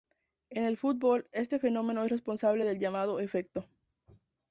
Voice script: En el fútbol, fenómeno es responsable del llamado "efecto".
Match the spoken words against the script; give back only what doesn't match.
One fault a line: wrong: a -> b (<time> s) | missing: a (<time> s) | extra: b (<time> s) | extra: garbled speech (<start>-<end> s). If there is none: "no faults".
extra: este (1.3 s)